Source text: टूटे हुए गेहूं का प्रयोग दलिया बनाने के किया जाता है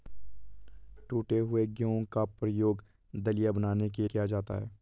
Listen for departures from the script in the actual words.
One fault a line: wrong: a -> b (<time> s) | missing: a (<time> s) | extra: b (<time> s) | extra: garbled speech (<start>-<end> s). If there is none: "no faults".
no faults